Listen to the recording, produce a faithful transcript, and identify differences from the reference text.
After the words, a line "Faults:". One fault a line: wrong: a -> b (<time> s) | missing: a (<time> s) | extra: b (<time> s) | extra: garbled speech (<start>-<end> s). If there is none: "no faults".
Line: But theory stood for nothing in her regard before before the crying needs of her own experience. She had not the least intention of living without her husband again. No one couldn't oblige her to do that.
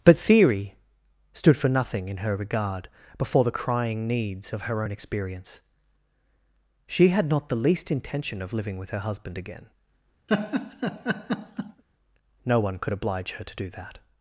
But theory stood for nothing in her regard before the crying needs of her own experience. She had not the least intention of living with her husband again. No one could oblige her to do that.
Faults:
missing: before (3.4 s)
wrong: without -> with (8.8 s)
wrong: couldn't -> could (12.8 s)